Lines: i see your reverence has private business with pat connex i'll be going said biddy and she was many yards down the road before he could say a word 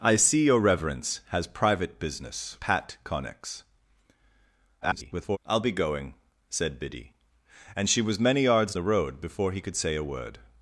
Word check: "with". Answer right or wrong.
wrong